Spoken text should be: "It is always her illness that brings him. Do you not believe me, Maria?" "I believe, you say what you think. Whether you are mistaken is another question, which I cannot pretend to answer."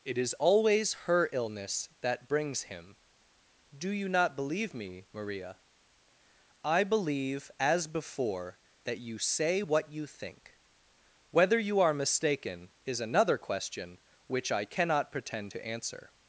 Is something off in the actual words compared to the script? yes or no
yes